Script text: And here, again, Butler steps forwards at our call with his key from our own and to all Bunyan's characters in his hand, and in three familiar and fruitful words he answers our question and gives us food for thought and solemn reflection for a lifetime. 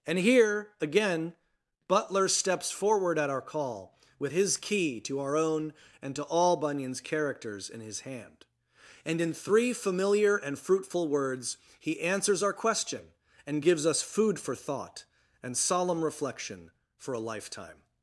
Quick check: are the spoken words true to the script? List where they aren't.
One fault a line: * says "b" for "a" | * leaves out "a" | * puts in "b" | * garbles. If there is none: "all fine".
* says "forward" for "forwards"
* says "to" for "from"